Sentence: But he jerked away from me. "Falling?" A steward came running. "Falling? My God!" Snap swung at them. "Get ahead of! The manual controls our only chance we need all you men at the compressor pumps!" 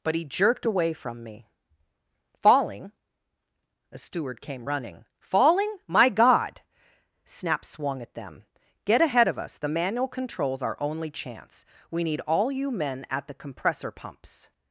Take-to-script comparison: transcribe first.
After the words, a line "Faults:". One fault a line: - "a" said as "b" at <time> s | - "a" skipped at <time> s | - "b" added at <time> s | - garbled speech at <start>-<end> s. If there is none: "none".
But he jerked away from me. "Falling?" A steward came running. "Falling? My God!" Snap swung at them. "Get ahead of us! The manual controls our only chance we need all you men at the compressor pumps!"
Faults:
- "us" added at 9.4 s